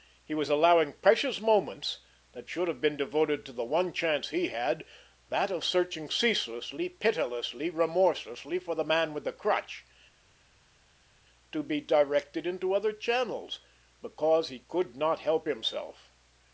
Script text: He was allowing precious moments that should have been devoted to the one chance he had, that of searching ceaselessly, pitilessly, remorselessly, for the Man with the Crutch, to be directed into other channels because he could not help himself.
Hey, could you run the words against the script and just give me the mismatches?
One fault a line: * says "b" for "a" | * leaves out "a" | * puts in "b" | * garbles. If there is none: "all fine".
all fine